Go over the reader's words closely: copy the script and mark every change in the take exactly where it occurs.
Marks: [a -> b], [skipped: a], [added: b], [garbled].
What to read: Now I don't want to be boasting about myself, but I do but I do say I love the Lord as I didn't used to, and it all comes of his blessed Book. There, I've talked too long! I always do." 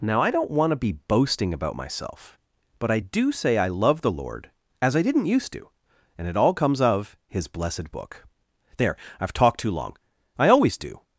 Now I don't want to be boasting about myself, but I do [skipped: but I do] say I love the Lord as I didn't used to, and it all comes of his blessed Book. There, I've talked too long! I always do."